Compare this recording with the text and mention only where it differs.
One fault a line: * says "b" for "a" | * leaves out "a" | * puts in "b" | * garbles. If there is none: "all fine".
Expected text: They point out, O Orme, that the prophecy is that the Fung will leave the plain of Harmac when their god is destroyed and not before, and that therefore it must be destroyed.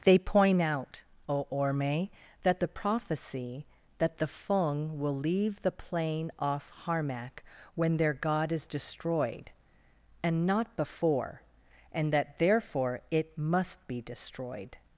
* leaves out "is"
* says "off" for "of"